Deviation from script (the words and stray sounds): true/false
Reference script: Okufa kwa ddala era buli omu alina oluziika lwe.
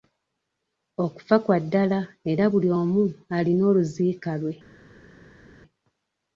false